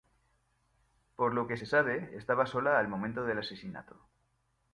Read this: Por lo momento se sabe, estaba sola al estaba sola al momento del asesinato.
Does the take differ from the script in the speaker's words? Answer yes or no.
yes